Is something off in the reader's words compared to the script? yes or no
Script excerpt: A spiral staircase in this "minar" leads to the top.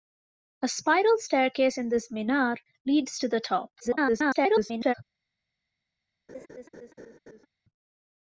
yes